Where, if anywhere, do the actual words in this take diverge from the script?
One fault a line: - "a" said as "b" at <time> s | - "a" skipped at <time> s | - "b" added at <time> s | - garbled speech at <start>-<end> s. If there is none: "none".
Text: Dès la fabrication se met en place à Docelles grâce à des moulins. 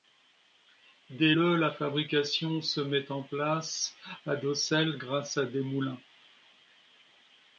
- "le" added at 1.3 s